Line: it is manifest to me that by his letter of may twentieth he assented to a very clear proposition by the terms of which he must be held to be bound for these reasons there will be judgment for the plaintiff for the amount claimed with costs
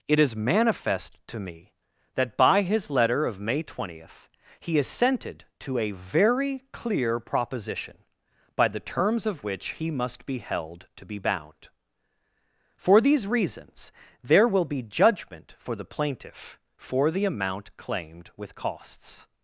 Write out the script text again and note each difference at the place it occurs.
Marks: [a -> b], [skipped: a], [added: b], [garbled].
it is manifest to me that by his letter of may twentieth he assented to a very clear proposition by the terms of which he must be held to be bound for these reasons there will be judgment for the plaintiff for the amount claimed with costs